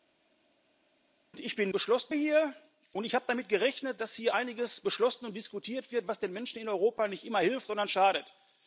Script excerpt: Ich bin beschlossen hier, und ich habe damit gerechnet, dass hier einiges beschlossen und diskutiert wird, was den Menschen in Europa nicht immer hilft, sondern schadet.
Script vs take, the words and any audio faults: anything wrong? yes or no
no